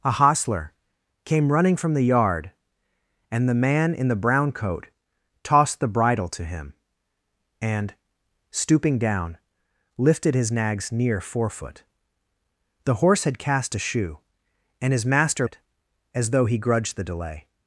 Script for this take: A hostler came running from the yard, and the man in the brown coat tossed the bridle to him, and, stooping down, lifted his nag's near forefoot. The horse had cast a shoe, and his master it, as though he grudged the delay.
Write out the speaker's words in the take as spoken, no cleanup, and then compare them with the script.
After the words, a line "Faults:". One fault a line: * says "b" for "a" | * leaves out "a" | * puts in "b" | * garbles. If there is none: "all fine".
A hostler came running from the yard, and the man in the brown coat tossed the bridle to him, and, stooping down, lifted his nag's near forefoot. The horse had cast a shoe, and his master it, as though he grudged the delay.
Faults:
all fine